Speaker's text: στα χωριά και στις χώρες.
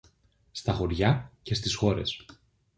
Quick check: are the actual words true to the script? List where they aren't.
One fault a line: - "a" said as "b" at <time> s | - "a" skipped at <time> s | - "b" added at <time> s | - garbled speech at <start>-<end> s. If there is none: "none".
none